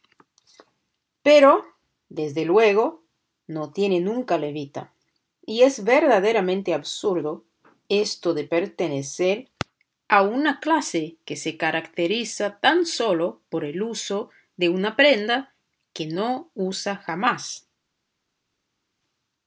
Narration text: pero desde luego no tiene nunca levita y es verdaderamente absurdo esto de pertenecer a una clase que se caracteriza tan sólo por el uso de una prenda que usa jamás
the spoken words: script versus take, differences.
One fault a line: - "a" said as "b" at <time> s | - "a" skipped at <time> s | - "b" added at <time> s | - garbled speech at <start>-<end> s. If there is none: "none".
- "no" added at 16.1 s